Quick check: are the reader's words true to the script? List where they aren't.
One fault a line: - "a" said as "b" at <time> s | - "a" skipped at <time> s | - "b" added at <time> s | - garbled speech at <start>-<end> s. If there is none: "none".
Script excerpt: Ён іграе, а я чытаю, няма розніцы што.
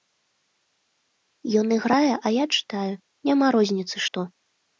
none